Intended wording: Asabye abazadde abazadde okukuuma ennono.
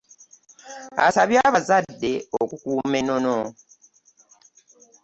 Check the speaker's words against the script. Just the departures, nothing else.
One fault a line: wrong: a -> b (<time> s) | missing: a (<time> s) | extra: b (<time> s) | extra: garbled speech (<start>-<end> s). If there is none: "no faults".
missing: abazadde (2.1 s)